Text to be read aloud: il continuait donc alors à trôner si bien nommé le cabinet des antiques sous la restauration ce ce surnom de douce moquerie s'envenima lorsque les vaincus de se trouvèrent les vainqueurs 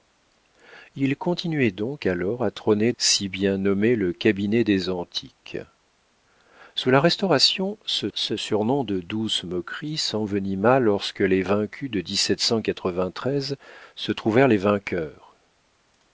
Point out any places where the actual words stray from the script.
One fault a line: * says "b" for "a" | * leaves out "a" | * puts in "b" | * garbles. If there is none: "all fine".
all fine